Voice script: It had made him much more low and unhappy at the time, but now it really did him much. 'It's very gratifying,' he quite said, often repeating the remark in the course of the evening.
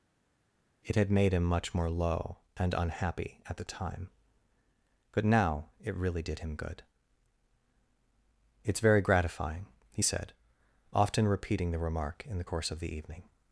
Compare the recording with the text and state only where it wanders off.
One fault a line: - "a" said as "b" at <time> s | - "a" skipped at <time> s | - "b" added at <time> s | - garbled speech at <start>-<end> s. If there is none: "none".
- "much" said as "good" at 6.6 s
- "quite" skipped at 10.0 s